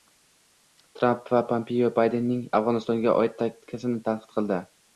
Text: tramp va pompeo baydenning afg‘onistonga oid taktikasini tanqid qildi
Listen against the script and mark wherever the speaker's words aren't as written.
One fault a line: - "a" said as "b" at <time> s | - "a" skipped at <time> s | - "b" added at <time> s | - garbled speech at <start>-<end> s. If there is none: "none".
none